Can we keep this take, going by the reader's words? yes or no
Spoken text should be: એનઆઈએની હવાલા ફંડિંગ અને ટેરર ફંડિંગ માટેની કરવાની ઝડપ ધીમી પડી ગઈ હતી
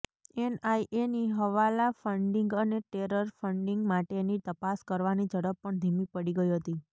no